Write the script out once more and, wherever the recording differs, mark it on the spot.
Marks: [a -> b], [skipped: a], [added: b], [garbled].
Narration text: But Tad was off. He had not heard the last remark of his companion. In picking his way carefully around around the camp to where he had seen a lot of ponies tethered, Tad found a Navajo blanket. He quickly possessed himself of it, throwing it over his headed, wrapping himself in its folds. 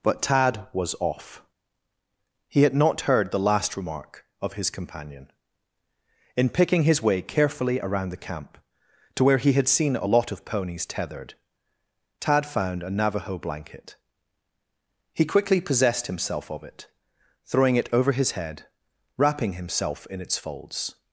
But Tad was off. He had not heard the last remark of his companion. In picking his way carefully around [skipped: around] the camp to where he had seen a lot of ponies tethered, Tad found a Navajo blanket. He quickly possessed himself of it, throwing it over his [headed, -> head] wrapping himself in its folds.